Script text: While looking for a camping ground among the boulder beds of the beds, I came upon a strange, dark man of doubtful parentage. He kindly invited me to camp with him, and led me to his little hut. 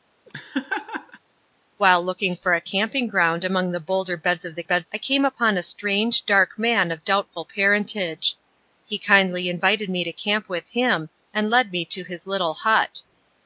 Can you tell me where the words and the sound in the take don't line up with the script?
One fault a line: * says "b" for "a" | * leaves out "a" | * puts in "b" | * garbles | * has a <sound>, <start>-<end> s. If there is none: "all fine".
* has a laugh, 0.3-1.2 s